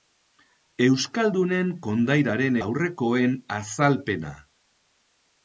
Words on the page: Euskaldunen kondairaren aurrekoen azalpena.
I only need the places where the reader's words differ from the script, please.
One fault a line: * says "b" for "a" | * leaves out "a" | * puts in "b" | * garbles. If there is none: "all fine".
all fine